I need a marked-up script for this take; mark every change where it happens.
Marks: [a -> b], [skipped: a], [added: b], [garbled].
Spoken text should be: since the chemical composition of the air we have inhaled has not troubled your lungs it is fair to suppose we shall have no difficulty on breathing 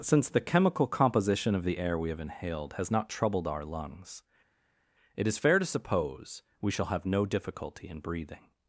since the chemical composition of the air we have inhaled has not troubled [your -> our] lungs it is fair to suppose we shall have no difficulty [on -> in] breathing